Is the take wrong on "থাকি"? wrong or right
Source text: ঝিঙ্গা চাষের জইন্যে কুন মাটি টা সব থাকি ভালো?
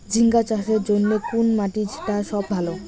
wrong